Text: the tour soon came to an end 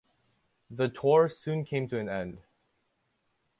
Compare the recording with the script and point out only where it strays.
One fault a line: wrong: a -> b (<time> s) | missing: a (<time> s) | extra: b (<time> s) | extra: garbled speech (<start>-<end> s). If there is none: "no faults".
no faults